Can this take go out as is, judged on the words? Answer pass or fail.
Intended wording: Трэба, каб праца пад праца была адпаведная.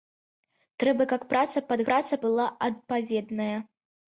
pass